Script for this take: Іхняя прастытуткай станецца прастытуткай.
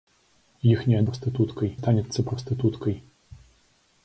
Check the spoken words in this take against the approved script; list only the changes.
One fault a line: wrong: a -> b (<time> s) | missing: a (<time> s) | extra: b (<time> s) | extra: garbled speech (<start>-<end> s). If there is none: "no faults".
no faults